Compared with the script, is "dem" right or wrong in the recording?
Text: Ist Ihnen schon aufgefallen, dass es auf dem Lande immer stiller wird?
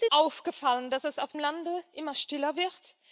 wrong